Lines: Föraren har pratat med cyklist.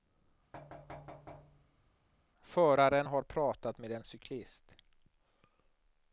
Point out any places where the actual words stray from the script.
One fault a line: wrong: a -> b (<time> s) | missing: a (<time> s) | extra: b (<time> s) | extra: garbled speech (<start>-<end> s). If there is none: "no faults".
extra: en (3.9 s)